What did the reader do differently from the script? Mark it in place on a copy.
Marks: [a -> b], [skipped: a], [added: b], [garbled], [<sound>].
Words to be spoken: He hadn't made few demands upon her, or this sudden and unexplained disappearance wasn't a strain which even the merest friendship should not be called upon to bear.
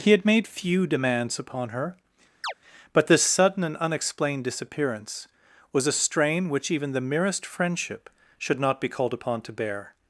He [hadn't -> had] made few demands upon her, [chirp] [or -> but] this sudden and unexplained disappearance [wasn't -> was] a strain which even the merest friendship should not be called upon to bear.